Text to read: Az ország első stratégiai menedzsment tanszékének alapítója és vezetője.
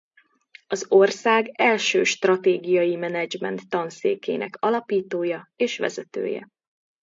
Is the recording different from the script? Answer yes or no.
no